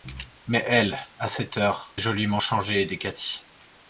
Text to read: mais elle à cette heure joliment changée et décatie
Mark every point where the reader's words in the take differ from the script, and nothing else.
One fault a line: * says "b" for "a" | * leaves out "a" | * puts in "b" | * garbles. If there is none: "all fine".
all fine